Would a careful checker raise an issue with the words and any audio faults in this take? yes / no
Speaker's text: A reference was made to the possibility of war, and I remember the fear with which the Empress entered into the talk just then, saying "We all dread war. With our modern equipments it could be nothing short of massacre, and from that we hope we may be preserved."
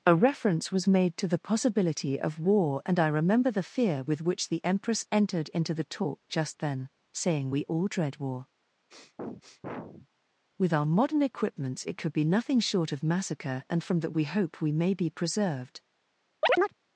yes